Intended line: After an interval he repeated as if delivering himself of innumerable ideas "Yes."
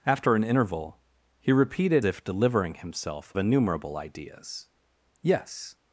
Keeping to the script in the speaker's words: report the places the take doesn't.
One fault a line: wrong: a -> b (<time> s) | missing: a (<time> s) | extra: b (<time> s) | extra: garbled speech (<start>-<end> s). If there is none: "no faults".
missing: as (2.0 s)
missing: of (3.3 s)